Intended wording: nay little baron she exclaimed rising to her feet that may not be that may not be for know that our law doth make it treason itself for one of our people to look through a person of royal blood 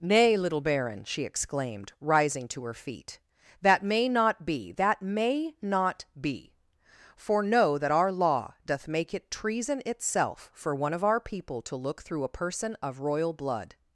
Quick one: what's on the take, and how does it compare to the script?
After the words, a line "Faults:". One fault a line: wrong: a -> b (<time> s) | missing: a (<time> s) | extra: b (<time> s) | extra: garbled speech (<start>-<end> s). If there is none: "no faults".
nay little baron she exclaimed rising to her feet that may not be that may not be for know that our law doth make it treason itself for one of our people to look through a person of royal blood
Faults:
no faults